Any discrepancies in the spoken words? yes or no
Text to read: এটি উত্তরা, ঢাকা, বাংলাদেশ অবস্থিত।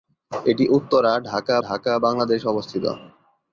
yes